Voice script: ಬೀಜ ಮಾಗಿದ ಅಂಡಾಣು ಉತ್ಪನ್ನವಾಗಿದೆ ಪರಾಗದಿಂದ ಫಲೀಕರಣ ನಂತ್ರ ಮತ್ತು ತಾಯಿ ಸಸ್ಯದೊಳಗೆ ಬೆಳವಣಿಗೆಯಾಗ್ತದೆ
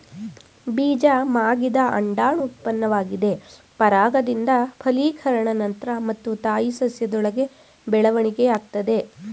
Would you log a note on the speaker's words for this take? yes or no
no